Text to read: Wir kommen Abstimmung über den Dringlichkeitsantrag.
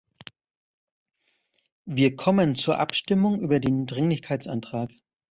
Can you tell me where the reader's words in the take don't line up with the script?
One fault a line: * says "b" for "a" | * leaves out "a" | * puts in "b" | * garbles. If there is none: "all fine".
* puts in "zur"